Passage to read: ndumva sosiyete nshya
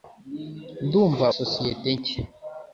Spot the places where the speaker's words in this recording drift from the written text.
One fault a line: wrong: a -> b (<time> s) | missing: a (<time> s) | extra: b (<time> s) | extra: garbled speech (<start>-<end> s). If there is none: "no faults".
no faults